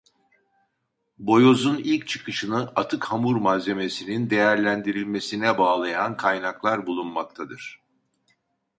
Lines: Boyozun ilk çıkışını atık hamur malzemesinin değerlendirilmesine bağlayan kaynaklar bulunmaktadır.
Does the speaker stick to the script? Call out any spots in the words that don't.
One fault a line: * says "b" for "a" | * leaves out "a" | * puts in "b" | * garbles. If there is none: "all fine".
all fine